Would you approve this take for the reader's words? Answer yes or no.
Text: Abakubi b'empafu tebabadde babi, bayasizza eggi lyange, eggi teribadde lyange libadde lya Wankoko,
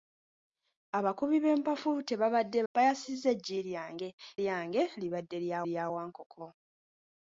no